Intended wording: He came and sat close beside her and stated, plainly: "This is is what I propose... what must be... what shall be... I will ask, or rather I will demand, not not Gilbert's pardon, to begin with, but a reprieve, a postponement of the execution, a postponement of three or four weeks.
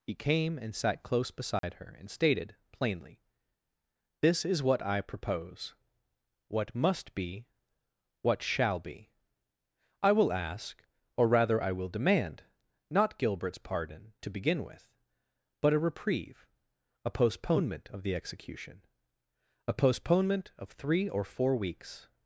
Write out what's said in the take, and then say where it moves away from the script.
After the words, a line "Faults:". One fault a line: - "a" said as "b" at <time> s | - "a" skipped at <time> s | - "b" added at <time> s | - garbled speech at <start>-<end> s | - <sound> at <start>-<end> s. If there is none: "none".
He came and sat close beside her and stated, plainly: "This is what I propose... what must be... what shall be... I will ask, or rather I will demand, not Gilbert's pardon, to begin with, but a reprieve, a postponement of the execution, a postponement of three or four weeks.
Faults:
- dropout at 1.6-1.6 s
- "is" skipped at 4.6 s
- "not" skipped at 13.2 s